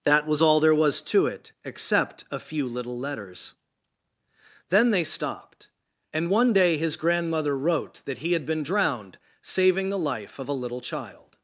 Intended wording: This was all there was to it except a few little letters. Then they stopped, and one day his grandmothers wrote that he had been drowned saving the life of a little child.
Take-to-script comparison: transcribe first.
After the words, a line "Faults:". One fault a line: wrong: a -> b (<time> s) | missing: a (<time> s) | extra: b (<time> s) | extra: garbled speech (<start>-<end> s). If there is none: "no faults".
That was all there was to it except a few little letters. Then they stopped, and one day his grandmother wrote that he had been drowned saving the life of a little child.
Faults:
wrong: This -> That (0.0 s)
wrong: grandmothers -> grandmother (7.0 s)